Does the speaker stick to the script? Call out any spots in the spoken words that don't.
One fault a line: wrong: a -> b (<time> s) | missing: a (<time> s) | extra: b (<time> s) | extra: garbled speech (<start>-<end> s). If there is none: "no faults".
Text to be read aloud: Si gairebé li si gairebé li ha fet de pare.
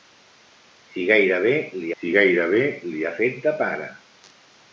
no faults